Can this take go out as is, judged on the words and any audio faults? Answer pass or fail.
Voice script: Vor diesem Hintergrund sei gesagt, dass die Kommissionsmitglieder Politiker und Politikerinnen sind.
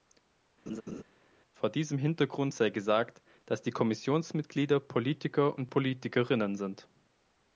fail